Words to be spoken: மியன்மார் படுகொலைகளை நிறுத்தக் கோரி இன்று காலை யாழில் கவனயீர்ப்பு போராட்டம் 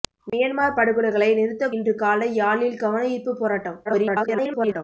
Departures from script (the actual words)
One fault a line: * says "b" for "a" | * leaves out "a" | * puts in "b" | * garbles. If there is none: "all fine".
* leaves out "கோரி"
* garbles